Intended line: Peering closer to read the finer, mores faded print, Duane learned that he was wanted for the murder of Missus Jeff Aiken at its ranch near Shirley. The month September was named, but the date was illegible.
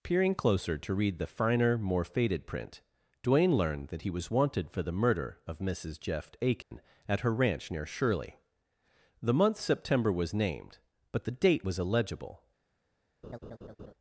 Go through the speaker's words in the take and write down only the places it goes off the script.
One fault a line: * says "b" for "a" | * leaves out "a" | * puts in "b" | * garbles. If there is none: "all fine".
* says "more" for "mores"
* says "her" for "its"